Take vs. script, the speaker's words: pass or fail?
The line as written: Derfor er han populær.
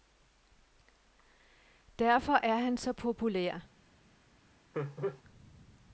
fail